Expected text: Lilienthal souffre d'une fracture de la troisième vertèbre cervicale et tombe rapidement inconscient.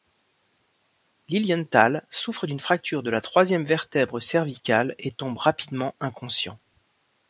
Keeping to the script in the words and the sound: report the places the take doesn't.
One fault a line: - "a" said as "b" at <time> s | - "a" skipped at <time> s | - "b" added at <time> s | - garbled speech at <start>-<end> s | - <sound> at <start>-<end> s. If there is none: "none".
none